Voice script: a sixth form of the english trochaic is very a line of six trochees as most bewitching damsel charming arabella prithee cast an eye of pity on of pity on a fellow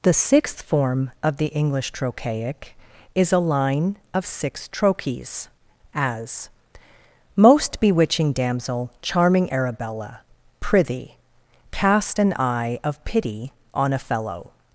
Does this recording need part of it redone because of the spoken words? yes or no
yes